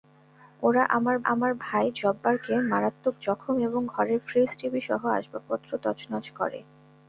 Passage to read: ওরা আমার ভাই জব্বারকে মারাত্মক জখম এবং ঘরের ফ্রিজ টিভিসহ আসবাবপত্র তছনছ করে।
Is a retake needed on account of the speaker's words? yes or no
yes